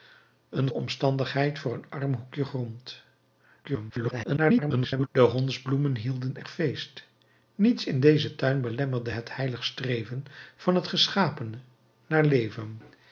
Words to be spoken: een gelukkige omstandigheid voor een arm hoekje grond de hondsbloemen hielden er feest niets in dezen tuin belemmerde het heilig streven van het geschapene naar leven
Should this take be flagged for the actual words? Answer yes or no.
yes